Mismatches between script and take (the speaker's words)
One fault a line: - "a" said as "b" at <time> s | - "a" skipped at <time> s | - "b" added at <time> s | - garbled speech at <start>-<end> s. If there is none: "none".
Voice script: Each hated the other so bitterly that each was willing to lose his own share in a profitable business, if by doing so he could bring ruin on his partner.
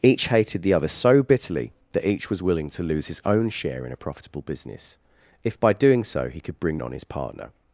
- "ruin" skipped at 6.8 s